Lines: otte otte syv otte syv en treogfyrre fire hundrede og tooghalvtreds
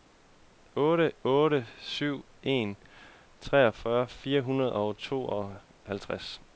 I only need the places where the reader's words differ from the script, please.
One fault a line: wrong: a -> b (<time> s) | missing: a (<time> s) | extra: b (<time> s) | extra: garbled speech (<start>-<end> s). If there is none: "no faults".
missing: otte syv (2.2 s)